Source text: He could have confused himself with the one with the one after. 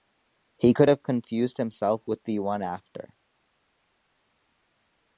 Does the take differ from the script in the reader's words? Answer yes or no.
yes